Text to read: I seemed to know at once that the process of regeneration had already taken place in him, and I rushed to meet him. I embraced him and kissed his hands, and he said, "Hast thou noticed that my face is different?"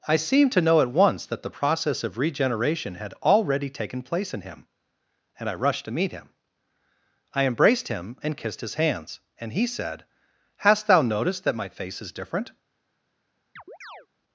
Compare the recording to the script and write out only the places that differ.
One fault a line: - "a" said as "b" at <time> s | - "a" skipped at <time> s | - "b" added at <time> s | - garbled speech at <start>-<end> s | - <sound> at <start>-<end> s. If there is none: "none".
- chirp at 13.6-14.1 s